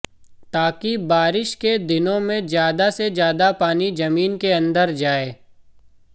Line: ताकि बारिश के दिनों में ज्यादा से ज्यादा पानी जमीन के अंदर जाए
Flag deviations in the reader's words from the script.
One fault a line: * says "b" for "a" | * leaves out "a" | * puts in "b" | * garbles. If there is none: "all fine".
all fine